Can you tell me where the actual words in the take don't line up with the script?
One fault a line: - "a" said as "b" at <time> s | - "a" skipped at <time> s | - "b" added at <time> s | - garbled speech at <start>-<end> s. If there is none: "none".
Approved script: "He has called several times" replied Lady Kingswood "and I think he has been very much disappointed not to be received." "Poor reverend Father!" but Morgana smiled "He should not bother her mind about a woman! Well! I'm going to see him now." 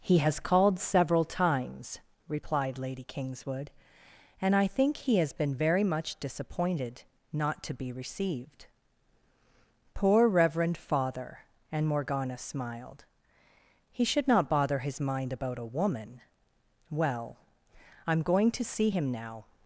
- "but" said as "and" at 11.7 s
- "her" said as "his" at 14.8 s